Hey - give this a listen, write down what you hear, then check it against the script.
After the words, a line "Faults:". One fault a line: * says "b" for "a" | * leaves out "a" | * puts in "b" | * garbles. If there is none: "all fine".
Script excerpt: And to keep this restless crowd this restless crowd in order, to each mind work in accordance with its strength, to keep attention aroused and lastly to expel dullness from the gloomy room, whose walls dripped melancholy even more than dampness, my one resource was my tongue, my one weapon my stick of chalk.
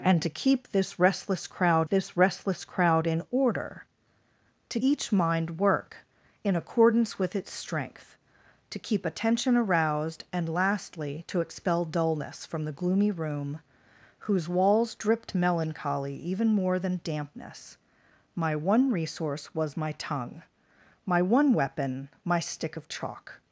And to keep this restless crowd this restless crowd in order, to each mind work in accordance with its strength, to keep attention aroused and lastly to expel dullness from the gloomy room, whose walls dripped melancholy even more than dampness, my one resource was my tongue, my one weapon my stick of chalk.
Faults:
all fine